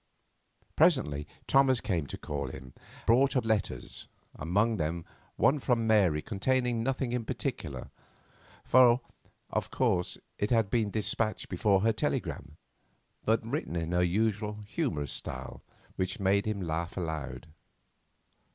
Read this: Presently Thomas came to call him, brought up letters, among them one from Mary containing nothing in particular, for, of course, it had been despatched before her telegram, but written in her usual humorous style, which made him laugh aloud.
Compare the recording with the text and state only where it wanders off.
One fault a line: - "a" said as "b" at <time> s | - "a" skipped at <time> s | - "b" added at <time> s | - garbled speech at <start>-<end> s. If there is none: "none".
none